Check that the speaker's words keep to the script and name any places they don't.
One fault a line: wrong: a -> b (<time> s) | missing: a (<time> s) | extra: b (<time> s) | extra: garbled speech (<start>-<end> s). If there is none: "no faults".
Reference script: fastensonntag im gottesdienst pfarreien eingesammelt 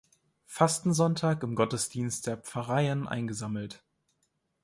extra: der (2.2 s)